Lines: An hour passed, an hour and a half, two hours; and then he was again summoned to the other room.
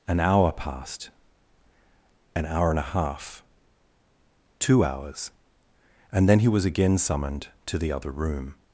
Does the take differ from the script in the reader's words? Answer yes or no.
no